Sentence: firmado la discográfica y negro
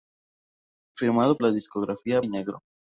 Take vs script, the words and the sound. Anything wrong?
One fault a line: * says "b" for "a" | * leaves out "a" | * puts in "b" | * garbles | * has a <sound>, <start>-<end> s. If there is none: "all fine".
all fine